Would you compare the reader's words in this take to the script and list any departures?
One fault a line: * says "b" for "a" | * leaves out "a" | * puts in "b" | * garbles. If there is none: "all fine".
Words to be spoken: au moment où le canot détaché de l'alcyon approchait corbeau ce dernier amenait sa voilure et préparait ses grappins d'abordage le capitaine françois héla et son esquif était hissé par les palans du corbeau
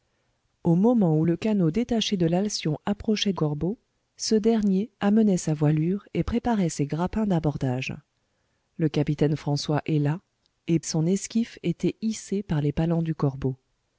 all fine